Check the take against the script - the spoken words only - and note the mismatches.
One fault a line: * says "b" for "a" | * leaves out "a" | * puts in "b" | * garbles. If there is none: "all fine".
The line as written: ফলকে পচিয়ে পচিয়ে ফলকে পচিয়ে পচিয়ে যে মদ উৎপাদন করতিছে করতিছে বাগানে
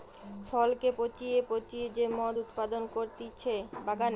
* leaves out "ফলকে পচিয়ে পচিয়ে"
* leaves out "করতিছে"